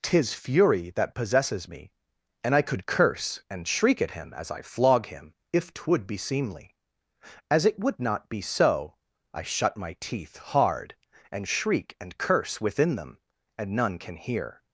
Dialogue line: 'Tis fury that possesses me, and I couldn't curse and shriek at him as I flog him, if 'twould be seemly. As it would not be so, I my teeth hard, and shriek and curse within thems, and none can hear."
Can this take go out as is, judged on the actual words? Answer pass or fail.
fail